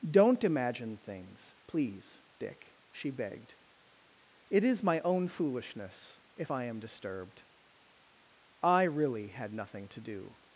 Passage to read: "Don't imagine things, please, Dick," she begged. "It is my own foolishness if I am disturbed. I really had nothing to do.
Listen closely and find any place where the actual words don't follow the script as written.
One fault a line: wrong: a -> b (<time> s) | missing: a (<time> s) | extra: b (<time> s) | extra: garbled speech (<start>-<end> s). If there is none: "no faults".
no faults